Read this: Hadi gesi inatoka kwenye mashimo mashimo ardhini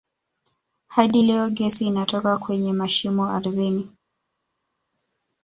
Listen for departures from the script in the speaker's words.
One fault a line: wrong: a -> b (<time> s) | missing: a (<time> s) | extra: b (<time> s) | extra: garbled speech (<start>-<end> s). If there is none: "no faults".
extra: leo (1.2 s)
missing: mashimo (3.3 s)